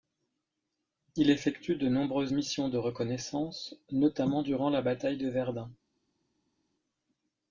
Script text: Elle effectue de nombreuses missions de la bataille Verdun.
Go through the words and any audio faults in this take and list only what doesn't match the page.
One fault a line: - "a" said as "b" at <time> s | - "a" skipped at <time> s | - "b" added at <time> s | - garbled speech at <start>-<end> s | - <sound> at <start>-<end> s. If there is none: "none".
- "Elle" said as "Il" at 1.1 s
- "reconnaissance notamment durant" added at 2.8 s
- "de" added at 5.2 s